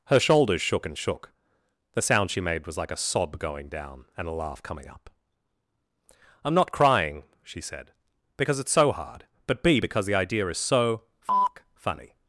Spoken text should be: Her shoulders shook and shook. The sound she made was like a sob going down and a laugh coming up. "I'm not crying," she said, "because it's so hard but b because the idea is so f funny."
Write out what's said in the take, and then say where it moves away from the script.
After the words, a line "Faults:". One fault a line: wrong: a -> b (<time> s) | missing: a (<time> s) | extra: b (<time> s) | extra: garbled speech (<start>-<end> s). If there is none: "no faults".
Her shoulders shook and shook. The sound she made was like a sob going down and a laugh coming up. "I'm not crying," she said, "because it's so hard but b because the idea is so f funny."
Faults:
no faults